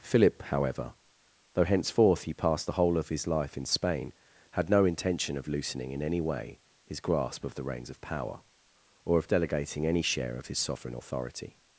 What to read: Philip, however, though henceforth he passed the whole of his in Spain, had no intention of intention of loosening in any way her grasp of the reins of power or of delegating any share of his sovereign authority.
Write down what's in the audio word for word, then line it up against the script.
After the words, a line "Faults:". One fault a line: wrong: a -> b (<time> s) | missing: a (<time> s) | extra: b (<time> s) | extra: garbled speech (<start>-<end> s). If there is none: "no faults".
Philip, however, though henceforth he passed the whole of his life in Spain, had no intention of loosening in any way his grasp of the reins of power or of delegating any share of his sovereign authority.
Faults:
extra: life (3.3 s)
missing: intention of (5.5 s)
wrong: her -> his (6.8 s)